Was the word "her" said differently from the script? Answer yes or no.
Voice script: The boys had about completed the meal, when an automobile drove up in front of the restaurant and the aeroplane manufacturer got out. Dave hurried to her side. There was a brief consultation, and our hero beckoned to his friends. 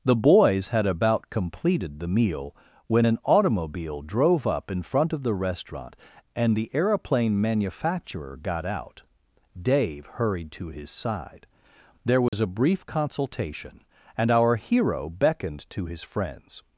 yes